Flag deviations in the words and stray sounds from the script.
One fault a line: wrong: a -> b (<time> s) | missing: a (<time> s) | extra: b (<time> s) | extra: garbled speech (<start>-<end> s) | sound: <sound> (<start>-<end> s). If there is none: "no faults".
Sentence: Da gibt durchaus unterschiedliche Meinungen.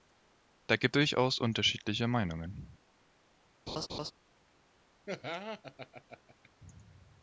sound: laugh (3.7-4.1 s)
sound: laugh (5.1-6.5 s)